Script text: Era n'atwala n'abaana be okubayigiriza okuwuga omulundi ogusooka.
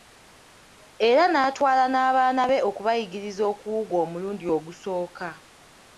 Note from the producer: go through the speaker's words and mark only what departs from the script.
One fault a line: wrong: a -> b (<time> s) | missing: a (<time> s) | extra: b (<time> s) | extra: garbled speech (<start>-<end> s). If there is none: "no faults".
no faults